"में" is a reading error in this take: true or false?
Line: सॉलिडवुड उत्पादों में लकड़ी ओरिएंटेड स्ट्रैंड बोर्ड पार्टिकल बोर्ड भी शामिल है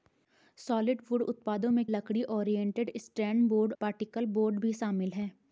false